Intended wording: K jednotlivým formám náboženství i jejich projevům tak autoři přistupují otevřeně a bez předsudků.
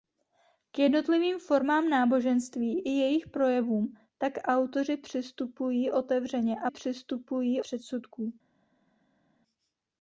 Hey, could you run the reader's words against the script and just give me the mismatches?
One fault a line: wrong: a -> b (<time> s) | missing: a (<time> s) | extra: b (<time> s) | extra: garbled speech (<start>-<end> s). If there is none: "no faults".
wrong: bez -> přistupují (6.7 s)